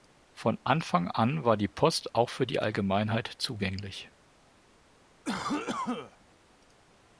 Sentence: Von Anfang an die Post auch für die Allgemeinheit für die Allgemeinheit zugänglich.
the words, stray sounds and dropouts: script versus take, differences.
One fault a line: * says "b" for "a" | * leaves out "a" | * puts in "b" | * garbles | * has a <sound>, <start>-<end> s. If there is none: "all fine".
* puts in "war"
* leaves out "für die Allgemeinheit"
* has a cough, 5.2-6.2 s